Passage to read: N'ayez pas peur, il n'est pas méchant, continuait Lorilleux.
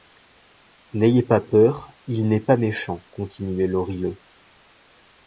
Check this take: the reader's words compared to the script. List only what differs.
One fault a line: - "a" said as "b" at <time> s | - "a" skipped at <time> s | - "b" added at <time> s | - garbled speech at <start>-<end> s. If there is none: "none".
none